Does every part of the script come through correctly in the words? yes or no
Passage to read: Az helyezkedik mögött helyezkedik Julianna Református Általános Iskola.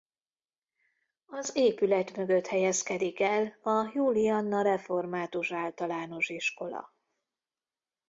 no